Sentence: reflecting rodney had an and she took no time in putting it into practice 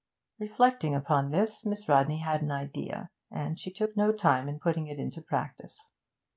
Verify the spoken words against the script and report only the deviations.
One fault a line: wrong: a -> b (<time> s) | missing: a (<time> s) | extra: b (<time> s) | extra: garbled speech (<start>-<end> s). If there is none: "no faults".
extra: upon this miss (0.9 s)
extra: idea (2.5 s)